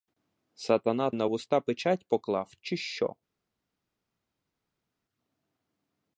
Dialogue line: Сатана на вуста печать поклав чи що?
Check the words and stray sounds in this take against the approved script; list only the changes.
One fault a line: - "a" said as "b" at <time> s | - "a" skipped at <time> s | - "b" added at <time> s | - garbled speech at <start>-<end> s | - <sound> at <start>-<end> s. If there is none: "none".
none